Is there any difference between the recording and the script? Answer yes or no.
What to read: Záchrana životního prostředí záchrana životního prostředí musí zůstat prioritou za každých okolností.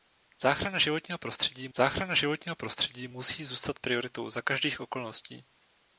no